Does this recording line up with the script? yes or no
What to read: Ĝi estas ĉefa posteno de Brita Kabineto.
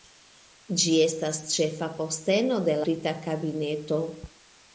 yes